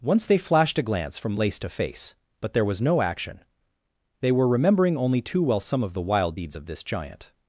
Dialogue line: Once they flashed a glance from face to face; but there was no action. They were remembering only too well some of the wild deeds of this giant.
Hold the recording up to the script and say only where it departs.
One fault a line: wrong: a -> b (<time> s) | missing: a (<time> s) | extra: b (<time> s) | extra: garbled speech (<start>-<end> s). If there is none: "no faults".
wrong: face -> lace (1.3 s)